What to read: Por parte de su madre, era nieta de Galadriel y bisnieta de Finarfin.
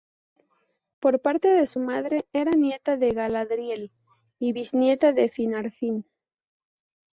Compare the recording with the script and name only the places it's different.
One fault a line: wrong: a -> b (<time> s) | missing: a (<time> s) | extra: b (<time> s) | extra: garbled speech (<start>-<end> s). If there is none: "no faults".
no faults